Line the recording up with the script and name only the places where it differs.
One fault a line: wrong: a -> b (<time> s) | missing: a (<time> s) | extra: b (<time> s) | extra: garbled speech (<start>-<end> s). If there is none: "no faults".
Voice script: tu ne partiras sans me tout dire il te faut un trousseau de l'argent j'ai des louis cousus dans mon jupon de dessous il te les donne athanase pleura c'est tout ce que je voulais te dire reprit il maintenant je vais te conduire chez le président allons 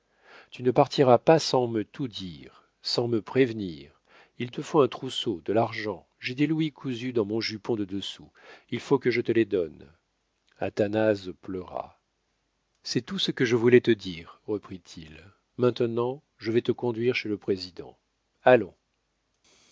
extra: pas (1.2 s)
extra: sans me prévenir (2.8 s)
extra: faut que je (8.8 s)